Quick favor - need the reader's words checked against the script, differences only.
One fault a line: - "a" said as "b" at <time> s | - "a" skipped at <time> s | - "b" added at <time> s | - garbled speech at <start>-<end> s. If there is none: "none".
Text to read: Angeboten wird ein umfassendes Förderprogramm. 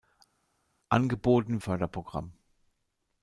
- "wird ein umfassendes" skipped at 1.6 s